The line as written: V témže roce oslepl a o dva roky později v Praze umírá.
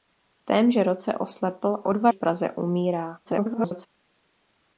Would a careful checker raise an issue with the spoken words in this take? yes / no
yes